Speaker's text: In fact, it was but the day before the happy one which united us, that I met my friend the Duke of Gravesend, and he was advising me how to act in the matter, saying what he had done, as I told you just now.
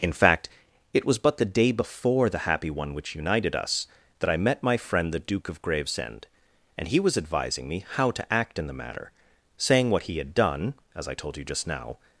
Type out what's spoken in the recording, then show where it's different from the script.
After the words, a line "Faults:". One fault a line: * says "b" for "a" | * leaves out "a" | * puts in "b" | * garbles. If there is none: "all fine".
In fact, it was but the day before the happy one which united us, that I met my friend the Duke of Gravesend, and he was advising me how to act in the matter, saying what he had done, as I told you just now.
Faults:
all fine